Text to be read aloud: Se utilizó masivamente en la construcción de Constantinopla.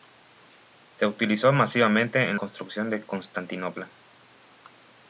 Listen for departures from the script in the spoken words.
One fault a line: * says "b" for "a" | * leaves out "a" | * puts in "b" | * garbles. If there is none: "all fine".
* leaves out "la"